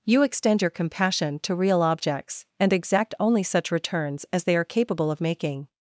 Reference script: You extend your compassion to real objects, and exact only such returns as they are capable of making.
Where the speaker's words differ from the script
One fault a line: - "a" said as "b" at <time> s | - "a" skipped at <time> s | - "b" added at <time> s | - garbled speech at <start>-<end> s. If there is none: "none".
none